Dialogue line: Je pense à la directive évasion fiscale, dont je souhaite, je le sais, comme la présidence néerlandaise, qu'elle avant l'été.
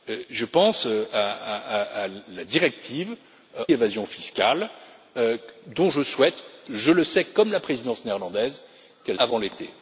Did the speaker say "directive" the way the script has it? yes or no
yes